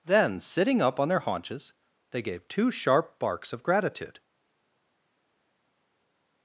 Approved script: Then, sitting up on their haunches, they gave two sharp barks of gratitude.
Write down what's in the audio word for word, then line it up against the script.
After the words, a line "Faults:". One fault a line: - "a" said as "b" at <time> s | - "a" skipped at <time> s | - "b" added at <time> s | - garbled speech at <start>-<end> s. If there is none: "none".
Then, sitting up on their haunches, they gave two sharp barks of gratitude.
Faults:
none